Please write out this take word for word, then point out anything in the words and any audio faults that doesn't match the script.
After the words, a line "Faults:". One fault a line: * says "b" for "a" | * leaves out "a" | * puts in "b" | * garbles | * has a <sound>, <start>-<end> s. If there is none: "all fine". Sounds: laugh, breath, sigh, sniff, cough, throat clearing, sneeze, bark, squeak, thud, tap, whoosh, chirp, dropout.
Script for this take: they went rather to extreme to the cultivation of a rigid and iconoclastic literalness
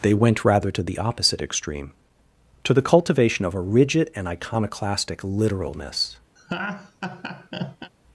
they went rather to the opposite extreme to the cultivation of a rigid and iconoclastic literalness
Faults:
* puts in "the opposite"
* has a laugh, 6.4-7.9 s